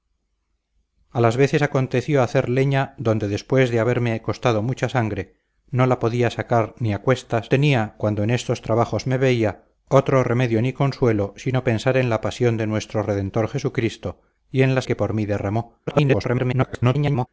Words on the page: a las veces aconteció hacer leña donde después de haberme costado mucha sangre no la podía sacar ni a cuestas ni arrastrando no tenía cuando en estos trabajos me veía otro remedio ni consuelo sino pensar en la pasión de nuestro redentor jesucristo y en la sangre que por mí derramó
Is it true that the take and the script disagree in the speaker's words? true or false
true